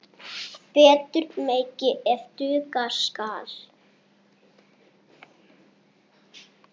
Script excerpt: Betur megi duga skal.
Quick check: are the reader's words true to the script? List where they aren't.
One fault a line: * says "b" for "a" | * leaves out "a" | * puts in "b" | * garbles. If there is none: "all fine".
* puts in "ef"